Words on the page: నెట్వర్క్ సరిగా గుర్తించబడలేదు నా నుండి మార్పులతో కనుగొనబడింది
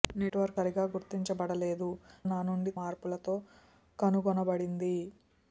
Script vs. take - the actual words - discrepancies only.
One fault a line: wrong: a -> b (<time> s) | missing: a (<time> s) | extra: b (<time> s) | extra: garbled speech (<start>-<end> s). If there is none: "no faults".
no faults